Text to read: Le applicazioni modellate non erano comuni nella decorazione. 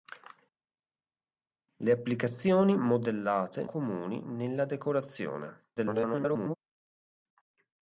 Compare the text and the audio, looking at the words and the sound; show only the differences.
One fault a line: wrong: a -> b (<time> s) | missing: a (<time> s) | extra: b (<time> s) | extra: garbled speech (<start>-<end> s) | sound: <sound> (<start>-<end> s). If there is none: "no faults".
missing: non erano (3.7 s)
extra: garbled speech (5.8-6.6 s)